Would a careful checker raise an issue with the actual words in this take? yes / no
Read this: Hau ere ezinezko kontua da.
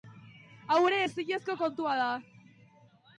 no